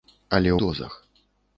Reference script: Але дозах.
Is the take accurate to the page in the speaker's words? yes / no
yes